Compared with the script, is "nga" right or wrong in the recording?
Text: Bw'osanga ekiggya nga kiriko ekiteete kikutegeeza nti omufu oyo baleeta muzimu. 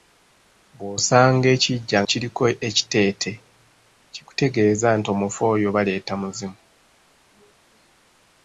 wrong